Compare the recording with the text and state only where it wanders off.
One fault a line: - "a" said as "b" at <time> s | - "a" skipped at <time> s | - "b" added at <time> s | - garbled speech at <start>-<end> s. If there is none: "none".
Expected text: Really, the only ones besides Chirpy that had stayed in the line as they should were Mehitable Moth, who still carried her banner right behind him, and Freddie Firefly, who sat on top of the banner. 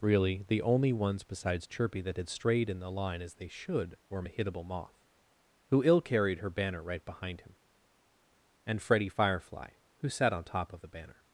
- "stayed" said as "strayed" at 2.3 s
- "still" said as "ill" at 5.8 s